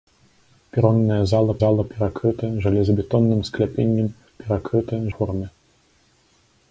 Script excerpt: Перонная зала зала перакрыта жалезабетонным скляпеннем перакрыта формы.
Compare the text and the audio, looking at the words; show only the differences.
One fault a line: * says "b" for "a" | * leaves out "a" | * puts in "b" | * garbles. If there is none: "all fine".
all fine